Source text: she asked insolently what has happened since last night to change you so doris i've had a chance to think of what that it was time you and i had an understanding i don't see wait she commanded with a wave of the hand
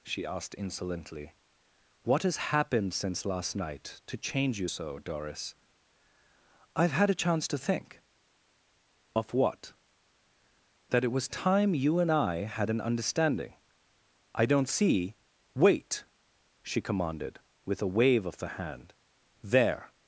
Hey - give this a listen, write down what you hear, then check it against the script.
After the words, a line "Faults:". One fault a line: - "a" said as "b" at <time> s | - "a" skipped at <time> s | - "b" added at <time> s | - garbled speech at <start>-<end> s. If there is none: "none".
she asked insolently what has happened since last night to change you so doris i've had a chance to think of what that it was time you and i had an understanding i don't see wait she commanded with a wave of the hand there
Faults:
- "there" added at 19.4 s